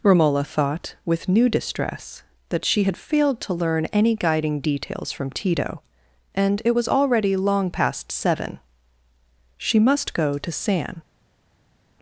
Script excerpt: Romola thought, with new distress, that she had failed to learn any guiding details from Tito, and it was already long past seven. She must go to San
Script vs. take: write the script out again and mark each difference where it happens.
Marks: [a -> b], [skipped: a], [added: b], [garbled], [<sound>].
Romola thought, with new distress, that she had failed to learn any guiding details from Tito, and it was already long past seven. She must go to San